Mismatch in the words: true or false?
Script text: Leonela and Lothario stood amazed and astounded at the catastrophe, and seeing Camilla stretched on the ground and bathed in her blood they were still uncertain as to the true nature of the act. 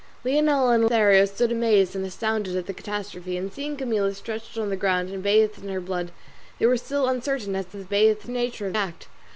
true